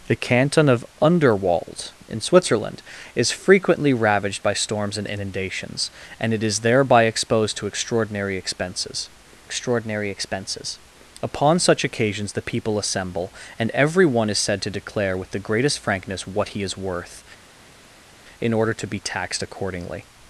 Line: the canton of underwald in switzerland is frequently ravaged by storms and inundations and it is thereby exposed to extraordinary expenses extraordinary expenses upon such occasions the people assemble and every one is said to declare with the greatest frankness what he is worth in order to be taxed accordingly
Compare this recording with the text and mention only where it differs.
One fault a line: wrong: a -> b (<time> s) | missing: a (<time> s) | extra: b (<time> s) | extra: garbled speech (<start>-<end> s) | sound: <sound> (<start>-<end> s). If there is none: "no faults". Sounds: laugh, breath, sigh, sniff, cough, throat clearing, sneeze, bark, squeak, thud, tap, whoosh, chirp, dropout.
no faults